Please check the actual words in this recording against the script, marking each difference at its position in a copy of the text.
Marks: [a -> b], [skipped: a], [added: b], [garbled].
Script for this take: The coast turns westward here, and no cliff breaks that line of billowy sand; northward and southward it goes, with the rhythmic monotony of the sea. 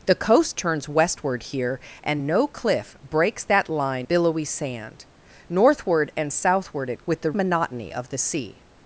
The coast turns westward here, and no cliff breaks that line [skipped: of] billowy sand; northward and southward it [skipped: goes,] with the [skipped: rhythmic] monotony of the sea.